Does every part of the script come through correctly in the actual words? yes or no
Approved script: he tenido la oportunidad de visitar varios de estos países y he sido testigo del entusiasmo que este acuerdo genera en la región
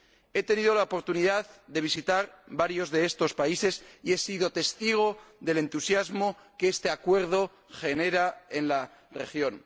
yes